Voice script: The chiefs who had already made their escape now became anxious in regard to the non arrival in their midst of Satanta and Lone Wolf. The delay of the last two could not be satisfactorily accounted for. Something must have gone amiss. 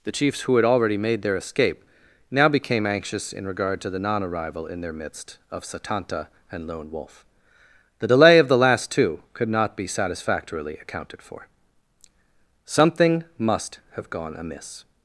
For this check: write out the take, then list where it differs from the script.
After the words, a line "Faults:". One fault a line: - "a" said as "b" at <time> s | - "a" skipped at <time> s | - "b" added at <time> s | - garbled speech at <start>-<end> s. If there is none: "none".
The chiefs who had already made their escape now became anxious in regard to the non arrival in their midst of Satanta and Lone Wolf. The delay of the last two could not be satisfactorily accounted for. Something must have gone amiss.
Faults:
none